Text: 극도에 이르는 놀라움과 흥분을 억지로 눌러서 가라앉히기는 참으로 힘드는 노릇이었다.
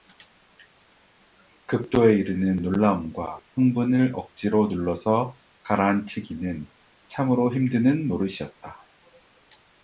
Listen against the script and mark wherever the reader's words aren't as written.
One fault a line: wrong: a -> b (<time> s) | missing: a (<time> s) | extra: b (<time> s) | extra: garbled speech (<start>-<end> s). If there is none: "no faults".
no faults